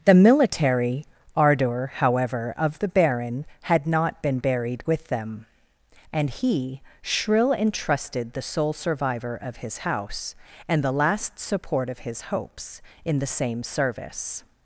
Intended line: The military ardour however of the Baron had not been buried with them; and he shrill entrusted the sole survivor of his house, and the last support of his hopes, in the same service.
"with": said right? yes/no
yes